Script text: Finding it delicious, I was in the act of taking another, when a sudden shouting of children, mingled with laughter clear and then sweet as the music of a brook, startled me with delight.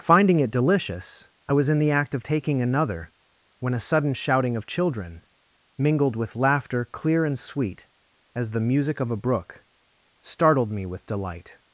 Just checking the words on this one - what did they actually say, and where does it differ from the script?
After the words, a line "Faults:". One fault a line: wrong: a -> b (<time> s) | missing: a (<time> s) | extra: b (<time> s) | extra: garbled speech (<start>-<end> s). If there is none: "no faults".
Finding it delicious, I was in the act of taking another, when a sudden shouting of children, mingled with laughter clear and sweet as the music of a brook, startled me with delight.
Faults:
missing: then (7.4 s)